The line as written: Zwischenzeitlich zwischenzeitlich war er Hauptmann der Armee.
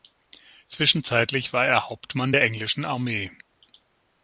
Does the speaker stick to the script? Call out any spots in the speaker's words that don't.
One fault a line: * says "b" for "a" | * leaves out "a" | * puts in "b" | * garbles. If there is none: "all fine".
* leaves out "zwischenzeitlich"
* puts in "englischen"